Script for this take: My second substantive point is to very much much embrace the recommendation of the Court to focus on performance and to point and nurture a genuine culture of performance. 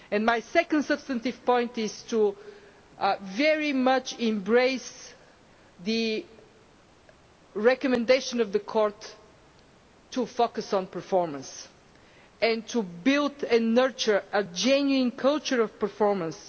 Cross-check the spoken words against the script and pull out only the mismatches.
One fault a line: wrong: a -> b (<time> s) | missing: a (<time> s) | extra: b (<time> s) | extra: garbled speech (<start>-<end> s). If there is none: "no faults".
missing: much (4.2 s)
wrong: point -> build (12.8 s)